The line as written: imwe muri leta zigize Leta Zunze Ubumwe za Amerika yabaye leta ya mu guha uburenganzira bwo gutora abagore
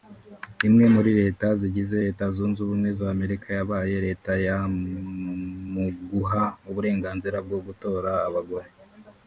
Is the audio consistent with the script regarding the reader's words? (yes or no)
yes